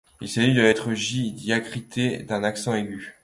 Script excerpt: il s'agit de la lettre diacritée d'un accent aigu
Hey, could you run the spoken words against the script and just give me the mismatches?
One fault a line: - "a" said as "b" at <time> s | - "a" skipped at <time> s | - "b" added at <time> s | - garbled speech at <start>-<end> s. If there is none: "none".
- "j" added at 0.9 s